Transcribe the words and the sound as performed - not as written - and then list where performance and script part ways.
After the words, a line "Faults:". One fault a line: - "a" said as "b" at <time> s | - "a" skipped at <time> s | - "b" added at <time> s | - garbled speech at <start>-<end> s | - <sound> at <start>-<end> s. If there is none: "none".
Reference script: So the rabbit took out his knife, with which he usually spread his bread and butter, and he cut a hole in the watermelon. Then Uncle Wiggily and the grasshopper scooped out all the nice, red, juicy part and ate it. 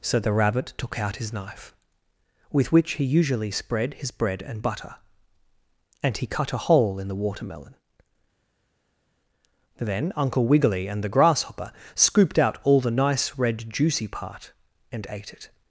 So the rabbit took out his knife, with which he usually spread his bread and butter, and he cut a hole in the watermelon. Then Uncle Wiggily and the grasshopper scooped out all the nice, red, juicy part and ate it.
Faults:
none